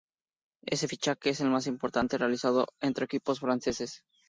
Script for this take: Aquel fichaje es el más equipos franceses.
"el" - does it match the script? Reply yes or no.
yes